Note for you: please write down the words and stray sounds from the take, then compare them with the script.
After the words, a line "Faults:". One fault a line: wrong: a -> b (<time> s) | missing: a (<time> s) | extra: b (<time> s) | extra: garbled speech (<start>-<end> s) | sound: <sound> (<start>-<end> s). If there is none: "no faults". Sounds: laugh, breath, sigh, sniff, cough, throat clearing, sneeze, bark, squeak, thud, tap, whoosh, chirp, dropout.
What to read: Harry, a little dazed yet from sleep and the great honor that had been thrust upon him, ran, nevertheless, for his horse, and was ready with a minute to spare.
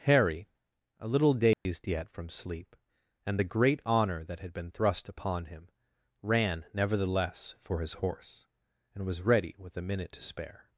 Harry, a little dazed yet from sleep and the great honor that had been thrust upon him, ran, nevertheless, for his horse, and was ready with a minute to spare.
Faults:
sound: dropout (1.5-1.7 s)